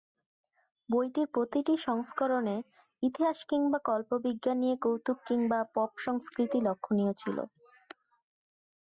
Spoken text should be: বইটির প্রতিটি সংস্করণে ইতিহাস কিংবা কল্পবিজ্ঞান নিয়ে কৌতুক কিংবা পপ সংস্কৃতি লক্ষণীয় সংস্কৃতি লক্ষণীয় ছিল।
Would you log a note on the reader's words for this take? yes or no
yes